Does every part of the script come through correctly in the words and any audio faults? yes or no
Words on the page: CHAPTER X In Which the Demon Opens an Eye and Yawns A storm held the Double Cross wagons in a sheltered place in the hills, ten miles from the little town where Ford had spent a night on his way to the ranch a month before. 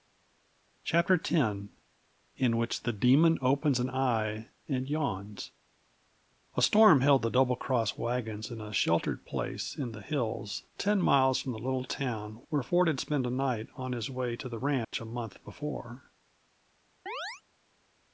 no